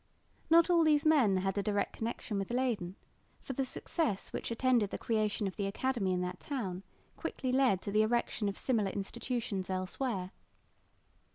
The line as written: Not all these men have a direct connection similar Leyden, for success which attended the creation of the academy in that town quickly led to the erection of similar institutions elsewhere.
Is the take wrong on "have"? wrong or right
wrong